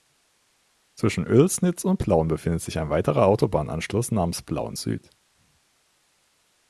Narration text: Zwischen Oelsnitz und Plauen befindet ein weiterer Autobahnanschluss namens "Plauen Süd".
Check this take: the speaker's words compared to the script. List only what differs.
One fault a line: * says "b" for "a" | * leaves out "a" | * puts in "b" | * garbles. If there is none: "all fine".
* puts in "sich"